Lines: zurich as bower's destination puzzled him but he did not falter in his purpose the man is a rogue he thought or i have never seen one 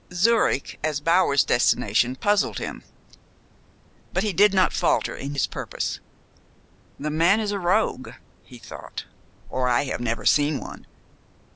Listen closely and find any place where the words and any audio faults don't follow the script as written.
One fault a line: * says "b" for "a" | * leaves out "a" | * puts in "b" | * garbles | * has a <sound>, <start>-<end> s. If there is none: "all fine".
all fine